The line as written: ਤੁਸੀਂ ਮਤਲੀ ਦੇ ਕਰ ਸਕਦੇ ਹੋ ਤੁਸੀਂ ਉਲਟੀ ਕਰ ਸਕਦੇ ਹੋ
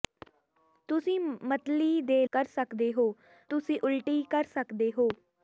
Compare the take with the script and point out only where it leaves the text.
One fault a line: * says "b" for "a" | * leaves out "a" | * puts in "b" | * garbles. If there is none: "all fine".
all fine